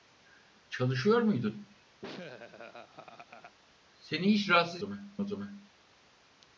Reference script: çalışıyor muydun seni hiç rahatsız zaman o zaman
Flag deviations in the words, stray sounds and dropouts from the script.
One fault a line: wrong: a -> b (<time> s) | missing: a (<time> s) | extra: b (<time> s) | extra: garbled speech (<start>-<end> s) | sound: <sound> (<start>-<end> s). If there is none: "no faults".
sound: laugh (2.0-3.6 s)